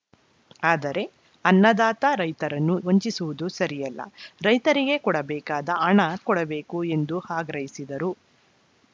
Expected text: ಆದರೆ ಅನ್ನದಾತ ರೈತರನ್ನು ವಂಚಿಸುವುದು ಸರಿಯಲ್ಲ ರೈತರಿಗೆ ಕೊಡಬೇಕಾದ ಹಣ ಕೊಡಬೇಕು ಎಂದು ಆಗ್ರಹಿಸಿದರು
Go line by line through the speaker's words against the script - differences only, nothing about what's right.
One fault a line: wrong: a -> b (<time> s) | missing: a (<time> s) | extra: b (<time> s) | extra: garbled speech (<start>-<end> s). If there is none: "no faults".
no faults